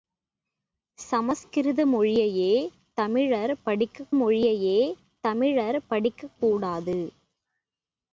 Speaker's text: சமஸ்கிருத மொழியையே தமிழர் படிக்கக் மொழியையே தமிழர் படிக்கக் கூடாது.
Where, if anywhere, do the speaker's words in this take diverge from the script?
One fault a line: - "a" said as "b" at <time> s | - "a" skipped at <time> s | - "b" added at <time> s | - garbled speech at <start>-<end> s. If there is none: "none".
none